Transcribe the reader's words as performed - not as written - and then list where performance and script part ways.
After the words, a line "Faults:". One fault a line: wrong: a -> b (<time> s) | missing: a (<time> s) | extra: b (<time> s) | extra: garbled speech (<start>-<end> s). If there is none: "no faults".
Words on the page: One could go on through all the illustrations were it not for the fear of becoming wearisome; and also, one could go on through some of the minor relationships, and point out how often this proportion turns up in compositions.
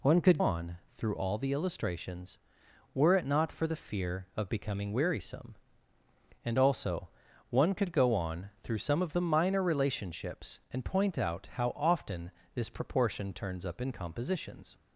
One could on through all the illustrations were it not for the fear of becoming wearisome; and also, one could go on through some of the minor relationships, and point out how often this proportion turns up in compositions.
Faults:
missing: go (0.4 s)